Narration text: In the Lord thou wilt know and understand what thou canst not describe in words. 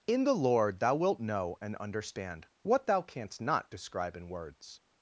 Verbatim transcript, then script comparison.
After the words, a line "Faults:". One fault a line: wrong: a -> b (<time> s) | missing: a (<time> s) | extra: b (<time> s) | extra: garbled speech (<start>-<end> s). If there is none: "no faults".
In the Lord thou wilt know and understand what thou canst not describe in words.
Faults:
no faults